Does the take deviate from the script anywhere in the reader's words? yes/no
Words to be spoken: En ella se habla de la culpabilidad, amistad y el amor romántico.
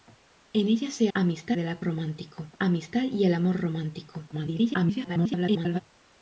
yes